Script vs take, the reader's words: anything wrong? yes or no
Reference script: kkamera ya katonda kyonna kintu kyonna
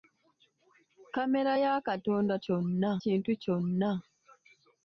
no